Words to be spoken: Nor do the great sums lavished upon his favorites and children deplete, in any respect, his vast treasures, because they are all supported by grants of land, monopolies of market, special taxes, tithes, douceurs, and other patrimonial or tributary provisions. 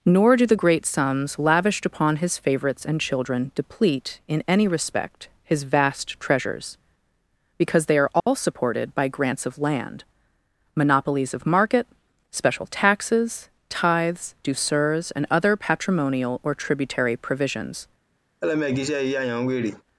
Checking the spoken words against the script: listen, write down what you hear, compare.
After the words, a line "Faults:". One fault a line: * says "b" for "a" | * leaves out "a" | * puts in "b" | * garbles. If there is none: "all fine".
Nor do the great sums lavished upon his favorites and children deplete, in any respect, his vast treasures, because they are all supported by grants of land, monopolies of market, special taxes, tithes, douceurs, and other patrimonial or tributary provisions.
Faults:
all fine